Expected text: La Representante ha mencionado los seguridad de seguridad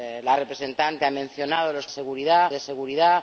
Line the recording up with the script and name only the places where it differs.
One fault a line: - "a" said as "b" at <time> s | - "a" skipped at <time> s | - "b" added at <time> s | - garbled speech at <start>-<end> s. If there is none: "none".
none